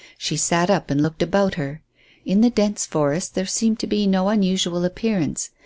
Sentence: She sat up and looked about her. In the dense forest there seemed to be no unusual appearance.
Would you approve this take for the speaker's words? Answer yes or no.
yes